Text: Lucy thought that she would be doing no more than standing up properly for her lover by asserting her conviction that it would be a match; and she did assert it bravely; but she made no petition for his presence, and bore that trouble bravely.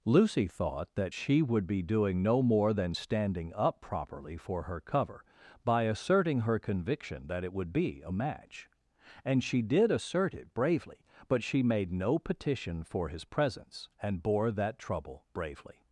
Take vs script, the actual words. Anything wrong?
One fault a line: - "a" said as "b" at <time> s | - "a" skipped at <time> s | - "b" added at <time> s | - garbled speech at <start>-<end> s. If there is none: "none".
- "lover" said as "cover" at 4.8 s